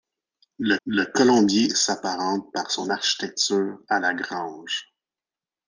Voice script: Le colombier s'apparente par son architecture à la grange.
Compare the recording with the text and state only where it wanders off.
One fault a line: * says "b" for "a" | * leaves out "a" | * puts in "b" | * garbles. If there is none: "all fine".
* puts in "le"